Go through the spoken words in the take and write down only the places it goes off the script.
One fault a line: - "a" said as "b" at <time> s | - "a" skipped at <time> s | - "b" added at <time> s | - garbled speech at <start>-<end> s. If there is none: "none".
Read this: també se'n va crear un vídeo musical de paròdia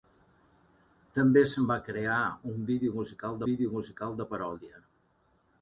- "vídeo musical" added at 3.5 s